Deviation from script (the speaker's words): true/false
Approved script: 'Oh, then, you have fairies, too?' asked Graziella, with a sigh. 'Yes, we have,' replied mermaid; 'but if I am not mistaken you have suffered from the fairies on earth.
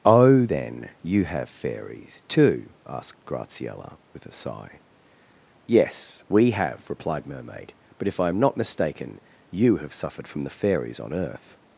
false